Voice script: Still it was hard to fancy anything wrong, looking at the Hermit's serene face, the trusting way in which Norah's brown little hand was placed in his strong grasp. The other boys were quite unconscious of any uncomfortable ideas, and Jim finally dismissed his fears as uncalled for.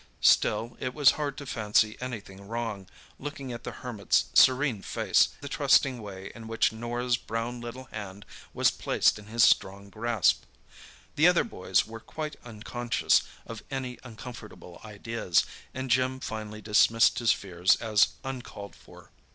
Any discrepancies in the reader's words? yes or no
no